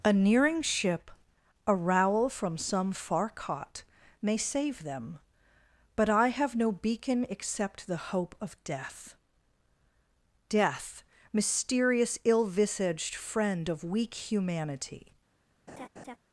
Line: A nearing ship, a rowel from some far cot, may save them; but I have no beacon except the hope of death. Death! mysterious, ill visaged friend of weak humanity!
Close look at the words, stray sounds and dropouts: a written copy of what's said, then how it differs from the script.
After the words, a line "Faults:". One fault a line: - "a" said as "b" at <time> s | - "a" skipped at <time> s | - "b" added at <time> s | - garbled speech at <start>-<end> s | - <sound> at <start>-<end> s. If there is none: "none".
A nearing ship, a rowel from some far cot, may save them; but I have no beacon except the hope of death. Death! mysterious, ill visaged friend of weak humanity!
Faults:
- laugh at 15.7-16.2 s